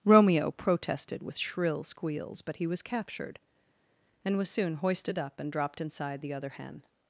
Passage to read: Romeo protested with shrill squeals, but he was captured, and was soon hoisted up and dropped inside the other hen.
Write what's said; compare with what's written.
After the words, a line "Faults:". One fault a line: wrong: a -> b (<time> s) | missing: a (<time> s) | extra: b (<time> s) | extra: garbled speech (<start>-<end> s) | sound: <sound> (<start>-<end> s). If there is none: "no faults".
Romeo protested with shrill squeals, but he was captured, and was soon hoisted up and dropped inside the other hen.
Faults:
no faults